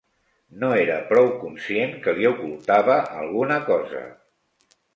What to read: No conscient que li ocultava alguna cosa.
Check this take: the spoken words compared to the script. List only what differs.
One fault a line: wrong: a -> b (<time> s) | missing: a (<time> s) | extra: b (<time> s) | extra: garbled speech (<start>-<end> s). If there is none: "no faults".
extra: era prou (0.8 s)